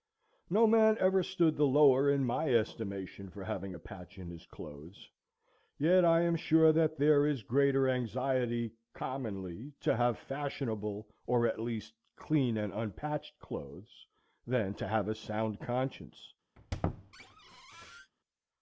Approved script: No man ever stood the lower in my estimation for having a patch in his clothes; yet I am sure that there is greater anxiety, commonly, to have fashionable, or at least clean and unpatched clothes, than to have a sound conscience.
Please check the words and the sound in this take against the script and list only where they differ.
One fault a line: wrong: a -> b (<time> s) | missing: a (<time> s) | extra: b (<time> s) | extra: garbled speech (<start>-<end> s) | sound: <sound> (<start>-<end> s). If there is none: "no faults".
sound: squeak (16.6-18.1 s)